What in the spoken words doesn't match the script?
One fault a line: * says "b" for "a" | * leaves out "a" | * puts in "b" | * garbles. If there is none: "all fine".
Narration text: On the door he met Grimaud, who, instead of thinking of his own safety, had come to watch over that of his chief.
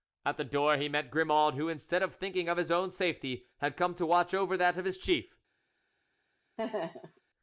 * says "At" for "On"